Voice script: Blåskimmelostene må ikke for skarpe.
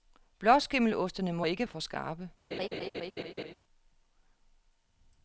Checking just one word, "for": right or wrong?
right